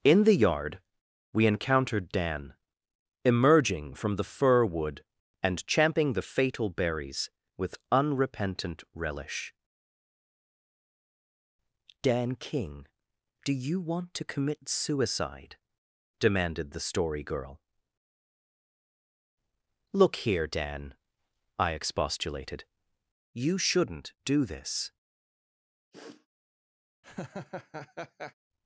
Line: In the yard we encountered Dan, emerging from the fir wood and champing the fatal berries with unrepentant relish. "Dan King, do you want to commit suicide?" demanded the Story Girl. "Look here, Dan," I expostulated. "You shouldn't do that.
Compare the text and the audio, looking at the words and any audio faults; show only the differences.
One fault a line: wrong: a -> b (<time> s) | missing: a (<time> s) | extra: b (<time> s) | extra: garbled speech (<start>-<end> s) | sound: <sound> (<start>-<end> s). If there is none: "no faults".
wrong: that -> this (24.4 s)
sound: sniff (25.9-26.3 s)
sound: laugh (27.0-28.3 s)